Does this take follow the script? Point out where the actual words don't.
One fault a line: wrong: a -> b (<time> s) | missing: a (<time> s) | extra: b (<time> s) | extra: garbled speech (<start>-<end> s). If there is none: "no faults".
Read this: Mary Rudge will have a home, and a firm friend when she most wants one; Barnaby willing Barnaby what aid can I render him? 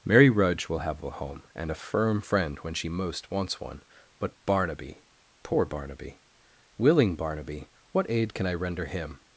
extra: but Barnaby poor (4.2 s)